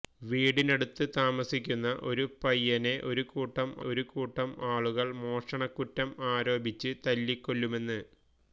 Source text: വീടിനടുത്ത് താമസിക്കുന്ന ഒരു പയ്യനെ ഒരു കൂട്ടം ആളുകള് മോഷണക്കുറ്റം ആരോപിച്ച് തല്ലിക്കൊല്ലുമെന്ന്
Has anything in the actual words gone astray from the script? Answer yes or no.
yes